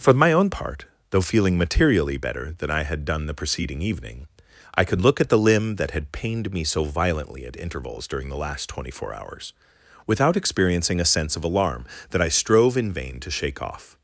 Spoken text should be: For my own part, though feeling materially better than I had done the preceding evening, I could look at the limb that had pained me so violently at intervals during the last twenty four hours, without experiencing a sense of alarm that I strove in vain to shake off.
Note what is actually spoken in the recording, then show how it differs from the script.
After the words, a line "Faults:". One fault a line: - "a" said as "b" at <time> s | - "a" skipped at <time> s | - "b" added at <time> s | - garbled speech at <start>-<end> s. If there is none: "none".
For my own part, though feeling materially better than I had done the preceding evening, I could look at the limb that had pained me so violently at intervals during the last twenty four hours, without experiencing a sense of alarm that I strove in vain to shake off.
Faults:
none